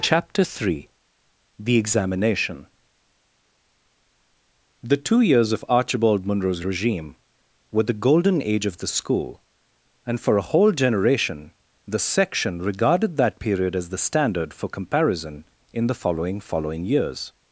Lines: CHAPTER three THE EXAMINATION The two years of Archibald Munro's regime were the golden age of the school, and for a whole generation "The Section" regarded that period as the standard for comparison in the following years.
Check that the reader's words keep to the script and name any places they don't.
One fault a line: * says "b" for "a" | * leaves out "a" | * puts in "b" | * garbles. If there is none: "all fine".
* puts in "following"